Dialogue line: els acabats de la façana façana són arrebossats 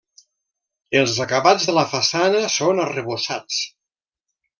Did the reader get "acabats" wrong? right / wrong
right